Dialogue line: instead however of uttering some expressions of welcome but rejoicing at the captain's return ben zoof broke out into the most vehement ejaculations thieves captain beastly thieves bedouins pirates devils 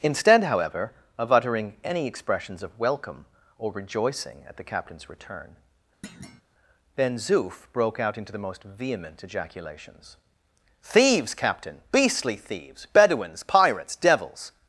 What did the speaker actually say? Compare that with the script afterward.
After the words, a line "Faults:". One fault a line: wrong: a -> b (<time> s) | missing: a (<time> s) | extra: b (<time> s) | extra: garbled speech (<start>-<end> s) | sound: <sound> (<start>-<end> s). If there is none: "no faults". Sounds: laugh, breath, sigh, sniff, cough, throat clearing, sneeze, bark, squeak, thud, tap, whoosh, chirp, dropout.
instead however of uttering any expressions of welcome or rejoicing at the captain's return ben zoof broke out into the most vehement ejaculations thieves captain beastly thieves bedouins pirates devils
Faults:
wrong: some -> any (1.8 s)
wrong: but -> or (3.6 s)
sound: thud (6.0-6.4 s)